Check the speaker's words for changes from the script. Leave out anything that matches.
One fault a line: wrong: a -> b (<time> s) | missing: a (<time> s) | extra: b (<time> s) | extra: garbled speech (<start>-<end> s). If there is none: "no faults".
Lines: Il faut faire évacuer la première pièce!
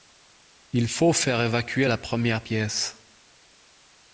no faults